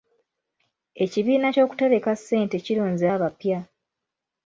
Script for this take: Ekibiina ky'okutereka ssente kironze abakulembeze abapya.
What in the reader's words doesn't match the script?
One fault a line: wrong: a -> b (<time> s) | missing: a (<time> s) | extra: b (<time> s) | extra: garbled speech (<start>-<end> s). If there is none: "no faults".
missing: abakulembeze (3.0 s)